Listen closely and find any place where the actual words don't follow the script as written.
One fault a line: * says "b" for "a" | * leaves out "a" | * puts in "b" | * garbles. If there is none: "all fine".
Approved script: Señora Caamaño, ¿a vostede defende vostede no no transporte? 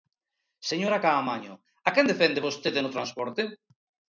* says "quen" for "vostede"
* leaves out "no"